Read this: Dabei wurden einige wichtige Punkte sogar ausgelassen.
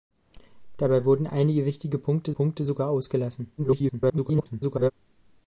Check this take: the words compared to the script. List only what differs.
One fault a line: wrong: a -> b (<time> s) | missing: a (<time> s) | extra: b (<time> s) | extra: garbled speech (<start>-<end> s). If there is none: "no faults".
extra: Punkte (2.3 s)
extra: garbled speech (3.6-4.9 s)